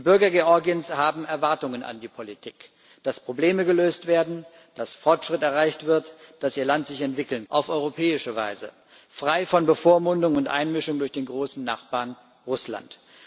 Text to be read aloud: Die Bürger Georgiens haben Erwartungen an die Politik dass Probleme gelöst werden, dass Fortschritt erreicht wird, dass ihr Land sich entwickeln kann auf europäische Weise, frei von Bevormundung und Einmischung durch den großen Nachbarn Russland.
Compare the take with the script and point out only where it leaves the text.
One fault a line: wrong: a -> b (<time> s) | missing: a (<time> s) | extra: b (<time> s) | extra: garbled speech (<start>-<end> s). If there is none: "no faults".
missing: kann (7.5 s)